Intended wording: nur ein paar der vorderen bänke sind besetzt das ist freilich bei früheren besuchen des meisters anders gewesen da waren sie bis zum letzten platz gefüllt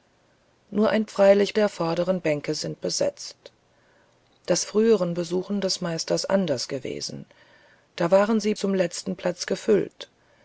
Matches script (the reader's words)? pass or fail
fail